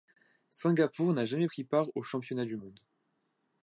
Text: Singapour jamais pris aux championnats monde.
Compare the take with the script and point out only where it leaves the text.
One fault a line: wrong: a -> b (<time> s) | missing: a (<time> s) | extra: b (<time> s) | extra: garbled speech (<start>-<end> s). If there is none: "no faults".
extra: n'a (1.1 s)
extra: part (1.6 s)
extra: du (2.4 s)